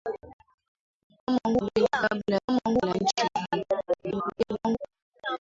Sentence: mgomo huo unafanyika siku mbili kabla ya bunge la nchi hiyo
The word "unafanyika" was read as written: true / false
false